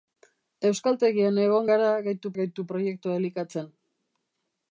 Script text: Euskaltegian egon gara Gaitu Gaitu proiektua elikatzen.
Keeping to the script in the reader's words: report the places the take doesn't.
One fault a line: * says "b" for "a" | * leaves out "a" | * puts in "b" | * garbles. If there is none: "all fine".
all fine